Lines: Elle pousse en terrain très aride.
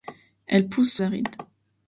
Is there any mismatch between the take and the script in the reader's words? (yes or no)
yes